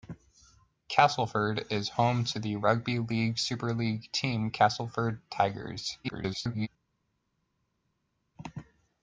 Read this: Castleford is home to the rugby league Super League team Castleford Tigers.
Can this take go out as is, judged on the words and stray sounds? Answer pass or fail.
fail